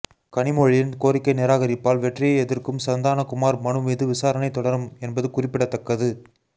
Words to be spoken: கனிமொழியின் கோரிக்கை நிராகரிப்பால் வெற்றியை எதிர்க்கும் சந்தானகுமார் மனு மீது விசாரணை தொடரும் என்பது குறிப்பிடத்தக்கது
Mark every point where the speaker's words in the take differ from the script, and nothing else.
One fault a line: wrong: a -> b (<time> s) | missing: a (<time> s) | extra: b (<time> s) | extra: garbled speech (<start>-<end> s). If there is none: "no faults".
no faults